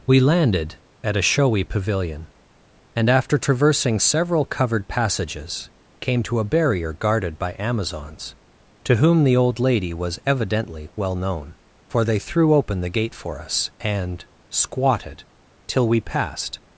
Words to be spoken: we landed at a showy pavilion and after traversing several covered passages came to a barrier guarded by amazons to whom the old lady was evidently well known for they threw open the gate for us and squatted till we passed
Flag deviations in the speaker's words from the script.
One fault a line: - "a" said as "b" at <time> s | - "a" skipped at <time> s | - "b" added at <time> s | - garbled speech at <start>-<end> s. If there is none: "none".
none